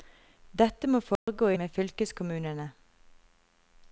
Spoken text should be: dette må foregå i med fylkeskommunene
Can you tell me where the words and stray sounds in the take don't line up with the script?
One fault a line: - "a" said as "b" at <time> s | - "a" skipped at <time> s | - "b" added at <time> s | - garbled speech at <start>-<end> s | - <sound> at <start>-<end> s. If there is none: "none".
- dropout at 1.2-1.3 s